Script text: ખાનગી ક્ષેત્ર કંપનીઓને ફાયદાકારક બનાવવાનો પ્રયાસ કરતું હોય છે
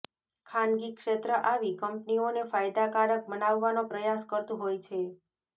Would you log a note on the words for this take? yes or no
yes